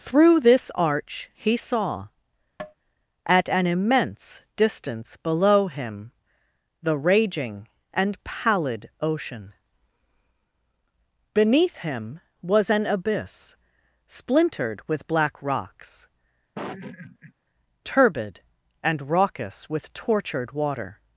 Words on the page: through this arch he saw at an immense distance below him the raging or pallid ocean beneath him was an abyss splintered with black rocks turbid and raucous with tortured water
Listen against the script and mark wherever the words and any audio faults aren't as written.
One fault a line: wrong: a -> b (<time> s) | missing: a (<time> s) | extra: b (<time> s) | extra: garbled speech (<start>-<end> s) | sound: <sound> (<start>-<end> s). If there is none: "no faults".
sound: tap (2.6-2.7 s)
wrong: or -> and (7.9 s)
sound: laugh (16.6-17.3 s)